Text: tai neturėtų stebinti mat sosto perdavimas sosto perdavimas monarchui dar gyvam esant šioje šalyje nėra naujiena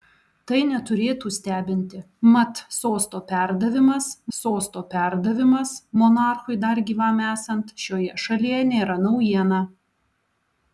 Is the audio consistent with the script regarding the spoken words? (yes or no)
yes